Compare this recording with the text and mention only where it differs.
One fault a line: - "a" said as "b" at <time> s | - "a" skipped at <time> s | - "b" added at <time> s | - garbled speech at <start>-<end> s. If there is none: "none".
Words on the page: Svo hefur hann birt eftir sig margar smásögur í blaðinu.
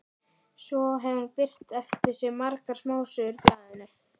none